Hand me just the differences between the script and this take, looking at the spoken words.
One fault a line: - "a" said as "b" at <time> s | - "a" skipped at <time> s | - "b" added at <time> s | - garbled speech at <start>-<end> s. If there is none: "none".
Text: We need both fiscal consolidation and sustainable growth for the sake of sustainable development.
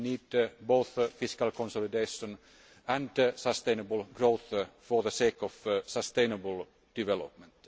none